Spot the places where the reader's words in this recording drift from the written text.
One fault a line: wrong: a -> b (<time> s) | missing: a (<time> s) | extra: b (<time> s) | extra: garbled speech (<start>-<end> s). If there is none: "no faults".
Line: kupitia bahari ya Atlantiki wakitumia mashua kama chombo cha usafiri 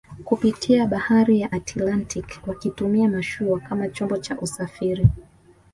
no faults